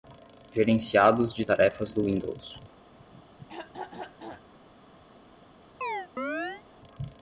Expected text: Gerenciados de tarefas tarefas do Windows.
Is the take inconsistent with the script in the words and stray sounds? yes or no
yes